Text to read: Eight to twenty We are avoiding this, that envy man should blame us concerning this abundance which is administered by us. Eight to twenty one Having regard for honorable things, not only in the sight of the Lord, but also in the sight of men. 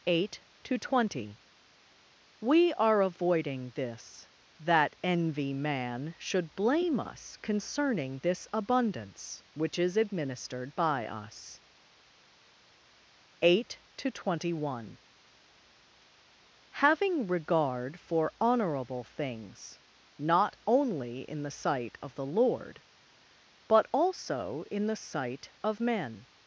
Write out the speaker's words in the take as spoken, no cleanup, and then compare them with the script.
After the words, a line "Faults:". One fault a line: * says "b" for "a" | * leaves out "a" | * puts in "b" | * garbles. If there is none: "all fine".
Eight to twenty We are avoiding this, that envy man should blame us concerning this abundance which is administered by us. Eight to twenty one Having regard for honorable things, not only in the sight of the Lord, but also in the sight of men.
Faults:
all fine